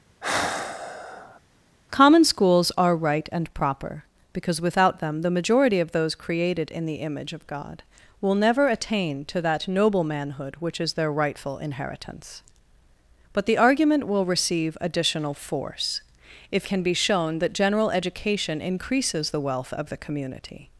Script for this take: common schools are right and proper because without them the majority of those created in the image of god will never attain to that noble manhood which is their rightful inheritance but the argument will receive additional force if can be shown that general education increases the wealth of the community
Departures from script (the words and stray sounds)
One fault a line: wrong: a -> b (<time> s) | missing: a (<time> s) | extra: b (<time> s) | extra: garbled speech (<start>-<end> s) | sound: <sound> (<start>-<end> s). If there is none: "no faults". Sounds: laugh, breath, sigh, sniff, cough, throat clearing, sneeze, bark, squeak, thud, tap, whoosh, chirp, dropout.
sound: sigh (0.2-1.4 s)